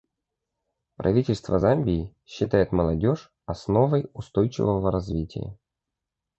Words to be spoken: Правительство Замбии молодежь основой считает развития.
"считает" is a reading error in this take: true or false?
true